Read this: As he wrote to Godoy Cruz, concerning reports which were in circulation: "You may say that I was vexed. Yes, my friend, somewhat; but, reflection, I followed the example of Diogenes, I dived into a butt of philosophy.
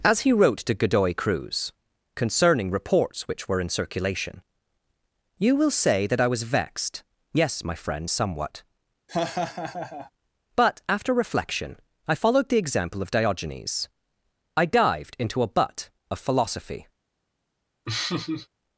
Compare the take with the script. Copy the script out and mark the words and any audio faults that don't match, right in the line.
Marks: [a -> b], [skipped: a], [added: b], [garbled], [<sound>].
As he wrote to Godoy Cruz, concerning reports which were in circulation: "You [may -> will] say that I was vexed. Yes, my friend, somewhat; [laugh] but, [added: after] reflection, I followed the example of Diogenes, I dived into a butt of philosophy. [laugh]